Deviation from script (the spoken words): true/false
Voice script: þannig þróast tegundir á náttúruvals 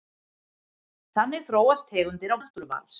false